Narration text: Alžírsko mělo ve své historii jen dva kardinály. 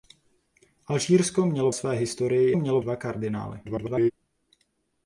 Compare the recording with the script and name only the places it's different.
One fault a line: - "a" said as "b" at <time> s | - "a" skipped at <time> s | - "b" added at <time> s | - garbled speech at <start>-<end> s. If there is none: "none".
- "ve" skipped at 1.7 s
- "jen" said as "mělo" at 2.5 s
- garbled speech at 3.6-4.1 s